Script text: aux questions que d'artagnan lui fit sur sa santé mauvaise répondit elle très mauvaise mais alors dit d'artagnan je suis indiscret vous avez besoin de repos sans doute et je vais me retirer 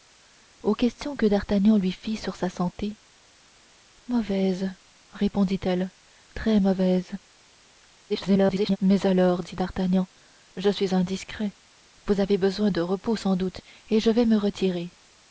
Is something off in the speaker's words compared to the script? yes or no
yes